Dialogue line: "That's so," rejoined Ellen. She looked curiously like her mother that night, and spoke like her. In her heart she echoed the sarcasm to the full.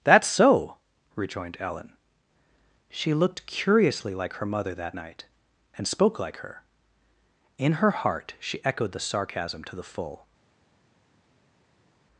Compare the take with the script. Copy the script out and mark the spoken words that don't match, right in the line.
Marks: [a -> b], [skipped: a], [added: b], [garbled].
"That's so," rejoined Ellen. She looked curiously like her mother that night, and spoke like her. In her heart she echoed the sarcasm to the full.